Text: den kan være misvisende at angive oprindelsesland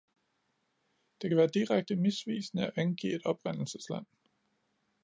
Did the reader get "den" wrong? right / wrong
wrong